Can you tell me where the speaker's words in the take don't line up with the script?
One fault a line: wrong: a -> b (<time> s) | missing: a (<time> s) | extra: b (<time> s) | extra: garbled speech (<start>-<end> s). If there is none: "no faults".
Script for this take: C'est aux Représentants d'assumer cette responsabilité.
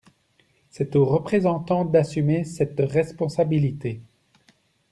no faults